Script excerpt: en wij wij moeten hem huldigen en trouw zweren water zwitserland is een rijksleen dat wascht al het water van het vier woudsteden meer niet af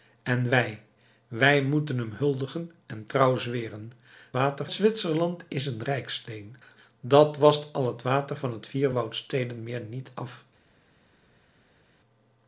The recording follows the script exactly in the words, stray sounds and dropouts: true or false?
true